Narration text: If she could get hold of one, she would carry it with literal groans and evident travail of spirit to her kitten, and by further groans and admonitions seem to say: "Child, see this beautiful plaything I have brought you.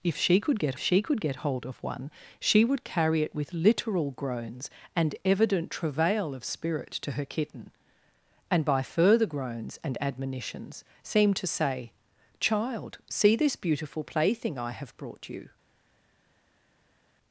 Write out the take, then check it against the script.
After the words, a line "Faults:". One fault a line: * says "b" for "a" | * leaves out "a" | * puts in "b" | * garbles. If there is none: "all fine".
If she could get she could get hold of one, she would carry it with literal groans and evident travail of spirit to her kitten, and by further groans and admonitions seem to say: "Child, see this beautiful plaything I have brought you.
Faults:
* puts in "she could get"